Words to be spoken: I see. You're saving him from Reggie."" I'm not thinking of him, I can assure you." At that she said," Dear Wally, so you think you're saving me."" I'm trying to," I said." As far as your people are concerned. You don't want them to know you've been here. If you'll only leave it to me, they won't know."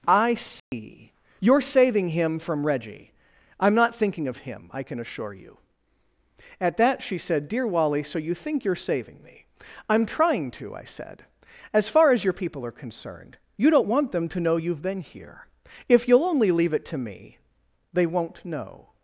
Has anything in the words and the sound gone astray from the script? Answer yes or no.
yes